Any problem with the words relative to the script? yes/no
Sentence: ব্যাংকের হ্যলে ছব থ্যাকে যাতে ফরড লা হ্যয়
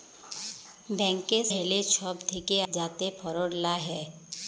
no